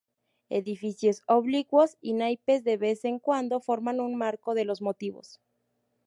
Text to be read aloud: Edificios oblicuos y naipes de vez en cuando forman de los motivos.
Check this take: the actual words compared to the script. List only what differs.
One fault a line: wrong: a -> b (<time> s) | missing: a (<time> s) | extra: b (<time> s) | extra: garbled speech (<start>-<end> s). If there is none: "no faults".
extra: un marco (4.0 s)